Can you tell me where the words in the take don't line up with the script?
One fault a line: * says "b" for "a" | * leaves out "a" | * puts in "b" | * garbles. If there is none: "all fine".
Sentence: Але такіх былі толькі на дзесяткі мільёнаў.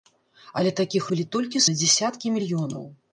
all fine